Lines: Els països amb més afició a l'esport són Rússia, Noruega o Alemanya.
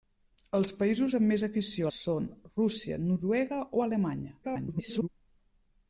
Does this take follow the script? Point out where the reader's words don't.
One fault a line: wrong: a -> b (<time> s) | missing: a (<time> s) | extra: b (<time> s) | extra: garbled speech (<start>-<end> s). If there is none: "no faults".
missing: l'esport (1.9 s)
extra: garbled speech (4.4-5.1 s)